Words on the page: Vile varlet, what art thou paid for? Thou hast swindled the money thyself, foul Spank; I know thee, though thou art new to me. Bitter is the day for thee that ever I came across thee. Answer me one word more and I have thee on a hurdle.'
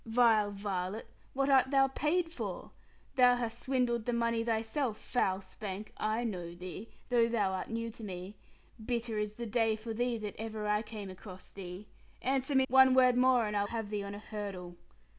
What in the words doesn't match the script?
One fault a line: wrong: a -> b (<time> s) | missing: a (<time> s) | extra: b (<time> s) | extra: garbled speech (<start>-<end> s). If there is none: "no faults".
no faults